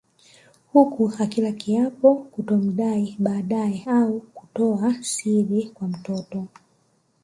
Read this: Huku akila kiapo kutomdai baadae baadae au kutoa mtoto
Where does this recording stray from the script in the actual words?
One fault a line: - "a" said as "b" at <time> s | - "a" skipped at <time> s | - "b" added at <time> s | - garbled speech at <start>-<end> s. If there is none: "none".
- "baadae" skipped at 3.9 s
- "siri kwa" added at 5.0 s